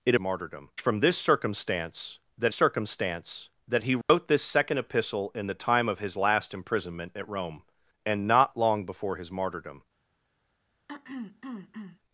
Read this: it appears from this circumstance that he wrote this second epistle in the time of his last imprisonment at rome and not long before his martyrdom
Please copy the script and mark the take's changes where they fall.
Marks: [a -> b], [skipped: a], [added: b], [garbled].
it [appears -> martyrdom] from this circumstance that [added: circumstance that] he wrote this second epistle in the time of his last imprisonment at rome and not long before his martyrdom